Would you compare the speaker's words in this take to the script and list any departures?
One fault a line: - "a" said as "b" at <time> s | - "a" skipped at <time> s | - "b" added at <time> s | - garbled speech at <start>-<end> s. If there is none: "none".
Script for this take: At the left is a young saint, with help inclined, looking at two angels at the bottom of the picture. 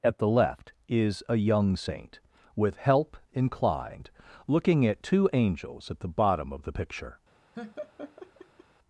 none